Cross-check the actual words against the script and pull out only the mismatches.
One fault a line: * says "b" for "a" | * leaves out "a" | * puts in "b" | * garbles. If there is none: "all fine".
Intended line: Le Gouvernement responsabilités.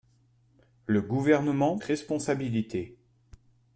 all fine